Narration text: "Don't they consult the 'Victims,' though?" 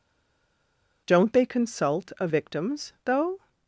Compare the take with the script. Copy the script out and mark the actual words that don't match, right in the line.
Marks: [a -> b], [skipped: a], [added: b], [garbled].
"Don't they consult [the -> a] 'Victims,' though?"